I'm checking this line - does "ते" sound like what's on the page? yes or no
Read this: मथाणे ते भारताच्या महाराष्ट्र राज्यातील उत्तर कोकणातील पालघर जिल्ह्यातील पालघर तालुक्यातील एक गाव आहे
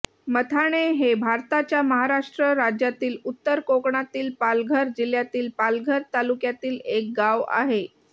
no